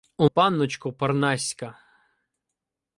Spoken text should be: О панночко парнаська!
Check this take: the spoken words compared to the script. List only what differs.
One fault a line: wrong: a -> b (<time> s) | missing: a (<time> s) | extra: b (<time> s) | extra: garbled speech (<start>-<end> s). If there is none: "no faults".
no faults